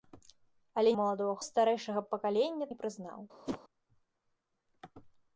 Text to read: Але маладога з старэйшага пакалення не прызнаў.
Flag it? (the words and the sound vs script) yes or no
yes